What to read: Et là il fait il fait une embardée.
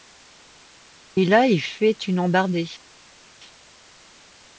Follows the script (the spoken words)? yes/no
no